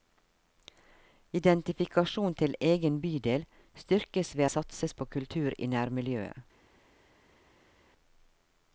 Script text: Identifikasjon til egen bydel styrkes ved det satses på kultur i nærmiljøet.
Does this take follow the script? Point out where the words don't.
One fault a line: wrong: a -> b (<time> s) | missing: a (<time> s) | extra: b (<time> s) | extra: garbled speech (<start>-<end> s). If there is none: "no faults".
no faults